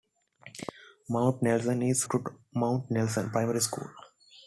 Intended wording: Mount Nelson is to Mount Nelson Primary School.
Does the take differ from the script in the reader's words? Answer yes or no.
no